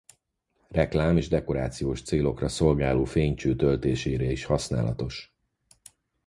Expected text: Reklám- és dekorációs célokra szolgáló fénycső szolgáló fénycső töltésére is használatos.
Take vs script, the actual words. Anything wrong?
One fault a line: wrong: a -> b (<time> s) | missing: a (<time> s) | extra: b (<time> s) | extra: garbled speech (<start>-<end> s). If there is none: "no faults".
missing: szolgáló fénycső (3.5 s)